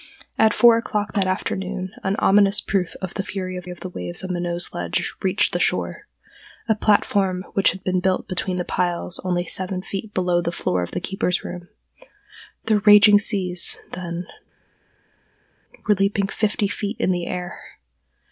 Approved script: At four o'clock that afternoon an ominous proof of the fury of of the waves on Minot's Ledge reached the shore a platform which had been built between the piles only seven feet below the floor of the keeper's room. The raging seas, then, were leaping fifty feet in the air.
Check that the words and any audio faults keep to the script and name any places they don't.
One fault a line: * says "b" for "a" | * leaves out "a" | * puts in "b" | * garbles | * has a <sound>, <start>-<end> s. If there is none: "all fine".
all fine